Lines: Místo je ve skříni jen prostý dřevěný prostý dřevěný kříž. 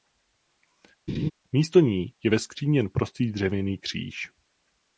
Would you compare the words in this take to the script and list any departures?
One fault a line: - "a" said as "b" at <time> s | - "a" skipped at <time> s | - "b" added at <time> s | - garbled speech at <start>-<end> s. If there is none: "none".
- "ní" added at 1.8 s
- "prostý dřevěný" skipped at 3.8 s